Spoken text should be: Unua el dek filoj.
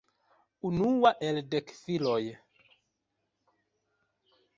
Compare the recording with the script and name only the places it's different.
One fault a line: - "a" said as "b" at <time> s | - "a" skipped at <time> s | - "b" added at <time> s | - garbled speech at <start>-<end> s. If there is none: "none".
none